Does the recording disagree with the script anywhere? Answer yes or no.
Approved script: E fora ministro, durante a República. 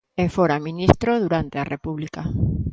no